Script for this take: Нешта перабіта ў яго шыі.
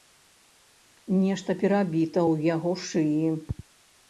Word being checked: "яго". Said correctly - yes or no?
yes